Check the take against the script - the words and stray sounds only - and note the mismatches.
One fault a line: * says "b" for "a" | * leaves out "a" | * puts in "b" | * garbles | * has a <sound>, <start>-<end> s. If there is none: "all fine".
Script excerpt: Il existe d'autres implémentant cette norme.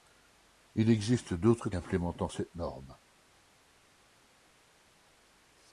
all fine